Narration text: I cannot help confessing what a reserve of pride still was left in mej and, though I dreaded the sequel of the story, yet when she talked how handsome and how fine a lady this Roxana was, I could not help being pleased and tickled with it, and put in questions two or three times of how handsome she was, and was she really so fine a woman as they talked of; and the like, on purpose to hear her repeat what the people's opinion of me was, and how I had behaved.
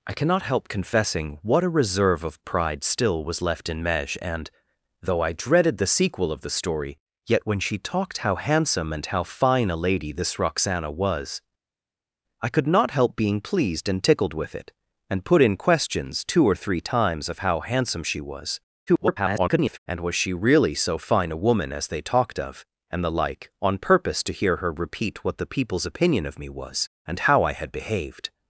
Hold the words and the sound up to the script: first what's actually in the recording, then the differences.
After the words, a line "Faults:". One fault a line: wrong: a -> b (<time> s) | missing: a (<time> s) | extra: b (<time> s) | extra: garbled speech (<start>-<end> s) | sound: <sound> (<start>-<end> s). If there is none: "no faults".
I cannot help confessing what a reserve of pride still was left in mej and, though I dreaded the sequel of the story, yet when she talked how handsome and how fine a lady this Roxana was, I could not help being pleased and tickled with it, and put in questions two or three times of how handsome she was, [garbled] and was she really so fine a woman as they talked of; and the like, on purpose to hear her repeat what the people's opinion of me was, and how I had behaved.
Faults:
extra: garbled speech (18.9-19.8 s)